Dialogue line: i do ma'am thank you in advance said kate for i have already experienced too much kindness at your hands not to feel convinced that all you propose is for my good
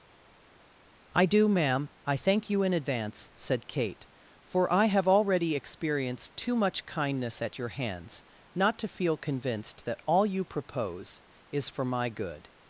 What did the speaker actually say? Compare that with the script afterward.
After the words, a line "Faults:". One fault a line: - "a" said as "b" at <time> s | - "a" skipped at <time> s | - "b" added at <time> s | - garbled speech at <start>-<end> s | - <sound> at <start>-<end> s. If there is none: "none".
i do ma'am i thank you in advance said kate for i have already experienced too much kindness at your hands not to feel convinced that all you propose is for my good
Faults:
- "i" added at 2.1 s